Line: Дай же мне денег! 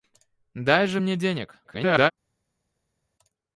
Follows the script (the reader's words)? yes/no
no